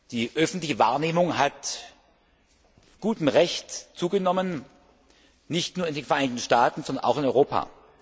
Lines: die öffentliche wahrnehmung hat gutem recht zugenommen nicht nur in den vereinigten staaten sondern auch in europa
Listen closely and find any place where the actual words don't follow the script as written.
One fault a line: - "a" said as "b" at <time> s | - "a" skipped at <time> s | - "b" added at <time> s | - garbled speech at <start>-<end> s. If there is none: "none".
none